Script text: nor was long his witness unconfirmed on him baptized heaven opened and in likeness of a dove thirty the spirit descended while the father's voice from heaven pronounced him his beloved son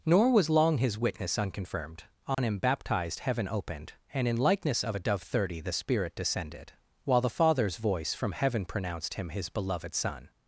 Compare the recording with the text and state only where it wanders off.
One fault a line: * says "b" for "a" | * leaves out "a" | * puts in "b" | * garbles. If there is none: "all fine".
all fine